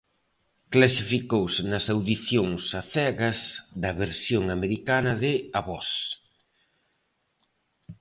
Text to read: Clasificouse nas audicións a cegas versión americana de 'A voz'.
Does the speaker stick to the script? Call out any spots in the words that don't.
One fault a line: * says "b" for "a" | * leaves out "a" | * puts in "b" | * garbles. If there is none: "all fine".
* puts in "da"